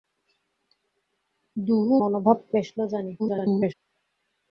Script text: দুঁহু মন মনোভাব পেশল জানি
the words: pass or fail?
fail